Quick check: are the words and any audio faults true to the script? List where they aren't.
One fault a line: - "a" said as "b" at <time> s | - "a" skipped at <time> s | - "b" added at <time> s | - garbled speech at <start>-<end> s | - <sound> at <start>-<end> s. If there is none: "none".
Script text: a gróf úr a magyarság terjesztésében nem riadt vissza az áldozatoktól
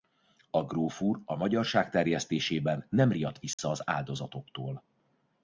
- dropout at 3.5-3.6 s